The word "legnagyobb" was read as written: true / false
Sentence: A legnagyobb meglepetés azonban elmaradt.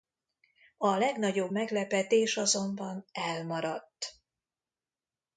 true